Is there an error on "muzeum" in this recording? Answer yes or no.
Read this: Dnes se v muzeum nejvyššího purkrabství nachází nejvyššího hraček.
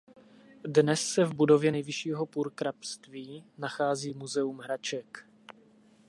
yes